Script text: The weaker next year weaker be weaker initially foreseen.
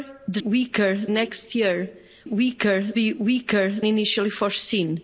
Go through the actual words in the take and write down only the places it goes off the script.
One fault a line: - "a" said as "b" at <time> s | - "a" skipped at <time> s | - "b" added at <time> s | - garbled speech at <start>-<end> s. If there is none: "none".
none